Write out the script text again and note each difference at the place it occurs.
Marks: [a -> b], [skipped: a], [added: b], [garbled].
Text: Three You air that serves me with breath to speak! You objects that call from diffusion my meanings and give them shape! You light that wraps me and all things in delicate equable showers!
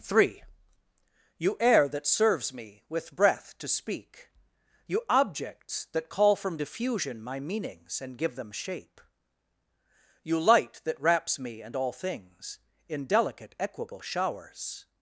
Three You air that serves me with breath to speak! You objects that call from diffusion my meanings and give them shape! You light that wraps me and all things in delicate equable showers!